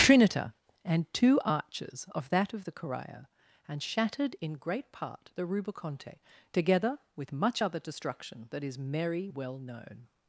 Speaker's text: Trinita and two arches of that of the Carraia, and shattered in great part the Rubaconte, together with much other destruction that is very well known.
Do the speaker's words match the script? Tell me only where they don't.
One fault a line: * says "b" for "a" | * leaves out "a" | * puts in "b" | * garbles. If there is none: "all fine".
* says "merry" for "very"